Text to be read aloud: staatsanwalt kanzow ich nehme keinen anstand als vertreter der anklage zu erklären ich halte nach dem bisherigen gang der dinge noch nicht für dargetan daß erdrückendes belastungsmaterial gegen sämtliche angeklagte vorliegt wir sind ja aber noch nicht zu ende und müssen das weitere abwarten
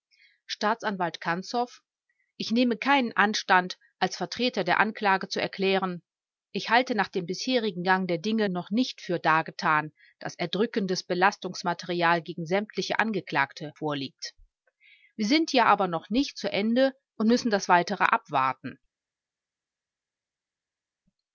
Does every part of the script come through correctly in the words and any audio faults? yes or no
yes